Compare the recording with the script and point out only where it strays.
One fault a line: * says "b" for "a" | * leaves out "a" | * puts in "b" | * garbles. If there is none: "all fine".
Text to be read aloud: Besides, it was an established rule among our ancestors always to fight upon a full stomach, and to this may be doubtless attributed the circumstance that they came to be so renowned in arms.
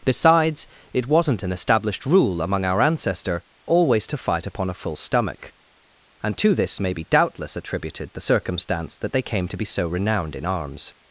* says "wasn't" for "was"
* says "ancestor" for "ancestors"